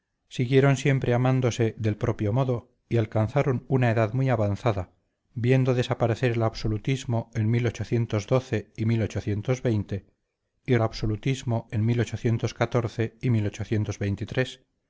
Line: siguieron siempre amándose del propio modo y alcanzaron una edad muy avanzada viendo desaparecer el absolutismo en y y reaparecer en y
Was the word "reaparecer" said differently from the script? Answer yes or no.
yes